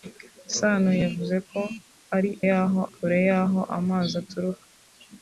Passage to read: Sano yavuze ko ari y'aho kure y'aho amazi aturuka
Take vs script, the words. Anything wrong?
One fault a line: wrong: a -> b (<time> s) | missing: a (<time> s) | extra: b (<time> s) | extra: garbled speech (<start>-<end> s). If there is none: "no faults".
no faults